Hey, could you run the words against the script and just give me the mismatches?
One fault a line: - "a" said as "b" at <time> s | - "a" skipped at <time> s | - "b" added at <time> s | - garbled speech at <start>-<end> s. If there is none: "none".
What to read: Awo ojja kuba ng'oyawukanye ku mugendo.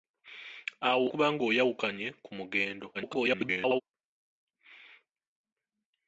- "ojja" skipped at 1.1 s
- garbled speech at 2.9-3.8 s